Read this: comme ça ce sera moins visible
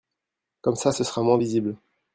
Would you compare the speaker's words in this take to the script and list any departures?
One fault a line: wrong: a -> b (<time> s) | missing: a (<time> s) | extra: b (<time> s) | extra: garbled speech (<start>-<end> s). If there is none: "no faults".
no faults